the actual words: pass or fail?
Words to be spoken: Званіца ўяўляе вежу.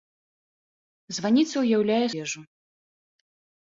pass